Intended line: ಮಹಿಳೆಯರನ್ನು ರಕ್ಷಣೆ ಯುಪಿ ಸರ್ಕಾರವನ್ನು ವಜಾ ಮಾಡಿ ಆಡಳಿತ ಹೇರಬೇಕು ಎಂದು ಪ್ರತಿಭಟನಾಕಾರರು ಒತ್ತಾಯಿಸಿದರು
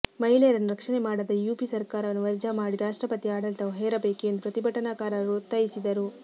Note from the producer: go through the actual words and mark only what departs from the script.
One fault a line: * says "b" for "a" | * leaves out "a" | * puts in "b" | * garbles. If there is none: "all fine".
* puts in "ಮಾಡದ"
* puts in "ರಾಷ್ಟ್ರಪತಿ"